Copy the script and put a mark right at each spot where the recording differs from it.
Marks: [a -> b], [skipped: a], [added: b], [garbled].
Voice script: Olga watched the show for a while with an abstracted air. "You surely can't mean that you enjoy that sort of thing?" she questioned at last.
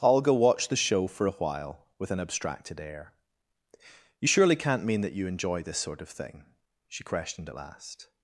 Olga watched the show for a while with an abstracted air. "You surely can't mean that you enjoy [that -> this] sort of thing?" she questioned at last.